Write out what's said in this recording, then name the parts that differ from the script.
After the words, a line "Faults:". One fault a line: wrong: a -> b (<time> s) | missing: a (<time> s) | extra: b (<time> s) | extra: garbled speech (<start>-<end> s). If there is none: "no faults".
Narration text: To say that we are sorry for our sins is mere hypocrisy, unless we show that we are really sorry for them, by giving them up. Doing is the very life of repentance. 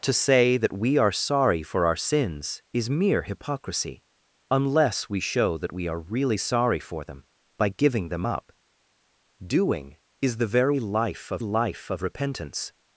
To say that we are sorry for our sins is mere hypocrisy, unless we show that we are really sorry for them, by giving them up. Doing is the very life of life of repentance.
Faults:
extra: life of (11.4 s)